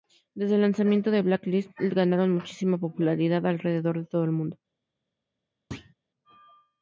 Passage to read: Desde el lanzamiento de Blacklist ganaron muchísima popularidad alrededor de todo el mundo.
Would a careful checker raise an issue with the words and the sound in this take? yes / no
yes